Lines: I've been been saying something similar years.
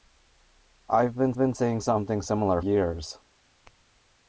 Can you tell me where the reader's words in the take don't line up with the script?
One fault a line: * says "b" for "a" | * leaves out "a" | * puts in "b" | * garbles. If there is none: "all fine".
all fine